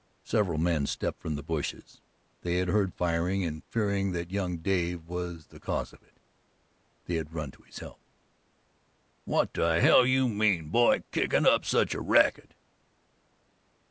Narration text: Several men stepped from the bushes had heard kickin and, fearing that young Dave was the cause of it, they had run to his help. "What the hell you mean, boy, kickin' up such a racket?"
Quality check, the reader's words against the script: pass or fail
fail